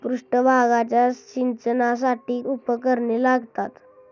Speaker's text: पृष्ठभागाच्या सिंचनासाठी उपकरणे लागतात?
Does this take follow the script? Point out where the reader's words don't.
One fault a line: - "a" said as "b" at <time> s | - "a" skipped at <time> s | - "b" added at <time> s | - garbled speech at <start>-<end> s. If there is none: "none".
none